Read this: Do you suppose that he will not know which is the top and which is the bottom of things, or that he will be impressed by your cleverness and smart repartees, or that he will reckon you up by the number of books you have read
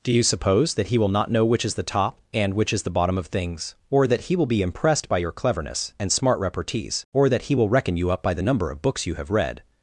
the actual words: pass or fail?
pass